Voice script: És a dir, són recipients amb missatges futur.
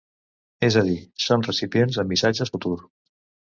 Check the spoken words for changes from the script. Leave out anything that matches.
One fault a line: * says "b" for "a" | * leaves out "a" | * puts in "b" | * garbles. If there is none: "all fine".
all fine